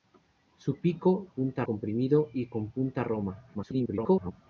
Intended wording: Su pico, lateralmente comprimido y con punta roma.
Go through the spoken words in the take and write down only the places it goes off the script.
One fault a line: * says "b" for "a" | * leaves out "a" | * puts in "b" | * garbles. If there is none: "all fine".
* says "punta" for "lateralmente"
* garbles